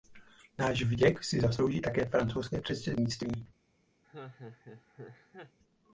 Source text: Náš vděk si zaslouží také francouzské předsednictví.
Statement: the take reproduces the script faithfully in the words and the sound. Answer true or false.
false